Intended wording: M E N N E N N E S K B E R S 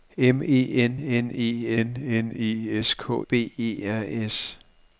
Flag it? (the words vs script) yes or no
no